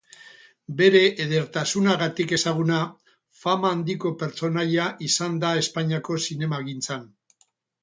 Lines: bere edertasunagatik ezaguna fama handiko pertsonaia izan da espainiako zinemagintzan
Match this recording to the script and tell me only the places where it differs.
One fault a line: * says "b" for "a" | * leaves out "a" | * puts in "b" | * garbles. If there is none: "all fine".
all fine